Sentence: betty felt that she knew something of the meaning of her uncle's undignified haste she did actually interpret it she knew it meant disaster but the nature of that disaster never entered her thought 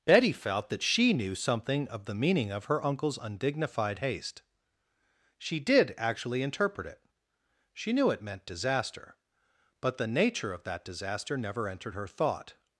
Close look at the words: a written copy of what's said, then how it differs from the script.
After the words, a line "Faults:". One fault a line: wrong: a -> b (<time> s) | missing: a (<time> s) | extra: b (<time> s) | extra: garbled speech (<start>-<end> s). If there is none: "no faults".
betty felt that she knew something of the meaning of her uncle's undignified haste she did actually interpret it she knew it meant disaster but the nature of that disaster never entered her thought
Faults:
no faults